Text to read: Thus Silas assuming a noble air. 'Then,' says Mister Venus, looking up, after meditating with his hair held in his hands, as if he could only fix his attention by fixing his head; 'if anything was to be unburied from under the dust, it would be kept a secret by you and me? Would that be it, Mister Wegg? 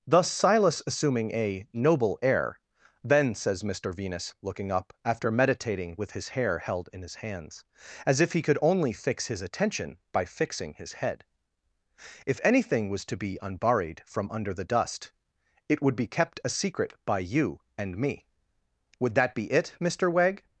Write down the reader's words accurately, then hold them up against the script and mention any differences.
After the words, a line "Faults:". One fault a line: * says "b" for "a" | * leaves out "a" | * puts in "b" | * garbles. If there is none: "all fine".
Thus Silas assuming a noble air. 'Then,' says Mister Venus, looking up, after meditating with his hair held in his hands, as if he could only fix his attention by fixing his head; 'if anything was to be unburied from under the dust, it would be kept a secret by you and me? Would that be it, Mister Wegg?
Faults:
all fine